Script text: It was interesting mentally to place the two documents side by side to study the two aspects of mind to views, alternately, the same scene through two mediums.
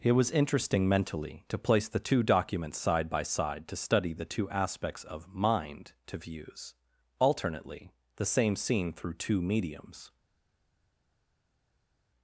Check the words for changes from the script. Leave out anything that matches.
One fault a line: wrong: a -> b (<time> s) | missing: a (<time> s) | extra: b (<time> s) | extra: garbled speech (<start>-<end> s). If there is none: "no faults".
no faults